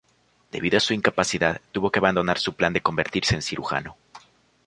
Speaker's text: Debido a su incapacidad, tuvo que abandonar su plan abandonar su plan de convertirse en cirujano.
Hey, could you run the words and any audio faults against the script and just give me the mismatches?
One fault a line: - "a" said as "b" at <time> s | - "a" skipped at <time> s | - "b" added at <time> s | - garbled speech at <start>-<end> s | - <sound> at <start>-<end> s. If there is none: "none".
- "abandonar su plan" skipped at 2.7 s